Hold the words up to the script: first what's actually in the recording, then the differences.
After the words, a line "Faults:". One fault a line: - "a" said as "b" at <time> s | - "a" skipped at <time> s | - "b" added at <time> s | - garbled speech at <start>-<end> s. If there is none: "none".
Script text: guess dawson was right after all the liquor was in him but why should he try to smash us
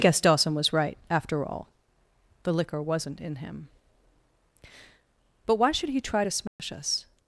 guess dawson was right after all the liquor wasn't in him but why should he try to smash us
Faults:
- "was" said as "wasn't" at 2.8 s